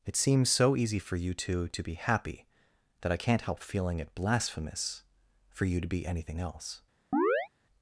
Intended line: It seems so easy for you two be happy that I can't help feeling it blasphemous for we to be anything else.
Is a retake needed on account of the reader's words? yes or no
yes